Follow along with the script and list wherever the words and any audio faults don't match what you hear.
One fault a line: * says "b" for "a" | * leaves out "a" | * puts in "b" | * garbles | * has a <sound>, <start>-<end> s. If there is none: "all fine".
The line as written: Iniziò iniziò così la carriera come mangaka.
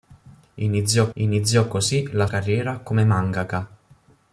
all fine